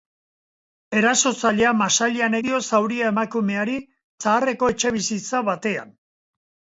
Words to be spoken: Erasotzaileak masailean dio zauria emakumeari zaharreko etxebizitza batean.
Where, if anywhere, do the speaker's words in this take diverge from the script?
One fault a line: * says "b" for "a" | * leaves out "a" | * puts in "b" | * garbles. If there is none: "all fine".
all fine